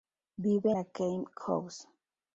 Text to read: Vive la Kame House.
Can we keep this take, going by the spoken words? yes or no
yes